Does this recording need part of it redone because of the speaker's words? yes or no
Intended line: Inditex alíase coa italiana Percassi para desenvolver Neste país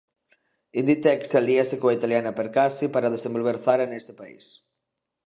yes